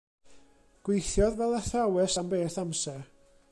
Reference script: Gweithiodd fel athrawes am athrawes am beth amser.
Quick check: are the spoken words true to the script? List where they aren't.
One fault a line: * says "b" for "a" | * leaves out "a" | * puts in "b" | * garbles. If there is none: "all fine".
* leaves out "athrawes am"